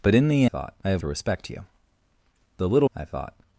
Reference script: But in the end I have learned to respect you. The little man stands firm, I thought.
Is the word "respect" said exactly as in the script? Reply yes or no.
yes